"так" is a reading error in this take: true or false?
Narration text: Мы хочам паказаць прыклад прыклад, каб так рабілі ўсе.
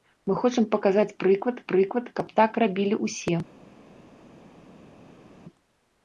false